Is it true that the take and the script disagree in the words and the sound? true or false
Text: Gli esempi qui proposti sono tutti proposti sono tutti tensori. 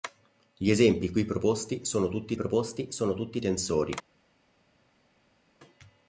false